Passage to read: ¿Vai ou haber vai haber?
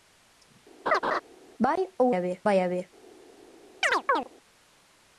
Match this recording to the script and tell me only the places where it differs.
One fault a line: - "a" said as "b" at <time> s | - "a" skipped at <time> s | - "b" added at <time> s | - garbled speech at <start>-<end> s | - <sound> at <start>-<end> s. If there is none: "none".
- laugh at 0.9-1.2 s
- chirp at 3.8-4.3 s